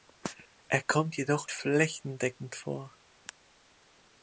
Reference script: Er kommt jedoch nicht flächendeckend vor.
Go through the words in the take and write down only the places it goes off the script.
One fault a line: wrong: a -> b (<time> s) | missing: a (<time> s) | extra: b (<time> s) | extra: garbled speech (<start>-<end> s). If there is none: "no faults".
missing: nicht (1.5 s)